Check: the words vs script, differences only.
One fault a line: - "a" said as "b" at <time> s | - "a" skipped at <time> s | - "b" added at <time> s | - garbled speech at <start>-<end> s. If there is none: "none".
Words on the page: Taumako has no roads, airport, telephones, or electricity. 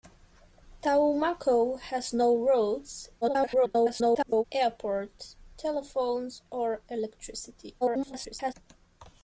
- garbled speech at 3.2-4.4 s
- garbled speech at 7.8-8.5 s